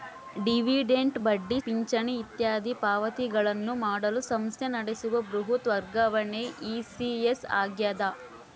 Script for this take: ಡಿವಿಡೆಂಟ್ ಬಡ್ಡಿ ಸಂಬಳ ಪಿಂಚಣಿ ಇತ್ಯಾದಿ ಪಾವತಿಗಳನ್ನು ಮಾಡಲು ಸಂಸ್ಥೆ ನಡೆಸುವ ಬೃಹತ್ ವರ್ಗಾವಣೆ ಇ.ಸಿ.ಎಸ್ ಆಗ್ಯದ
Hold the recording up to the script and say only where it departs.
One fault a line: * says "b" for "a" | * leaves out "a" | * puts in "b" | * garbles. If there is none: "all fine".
* leaves out "ಸಂಬಳ"